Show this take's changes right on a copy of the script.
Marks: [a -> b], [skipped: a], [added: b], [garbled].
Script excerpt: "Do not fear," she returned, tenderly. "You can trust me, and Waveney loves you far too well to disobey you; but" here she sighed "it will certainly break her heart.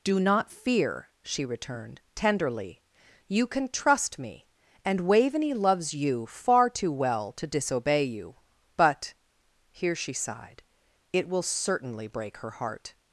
"Do not fear," she returned, tenderly. "You can trust me, and Waveney loves you far too well to disobey you; but" here she sighed "it will certainly break her heart.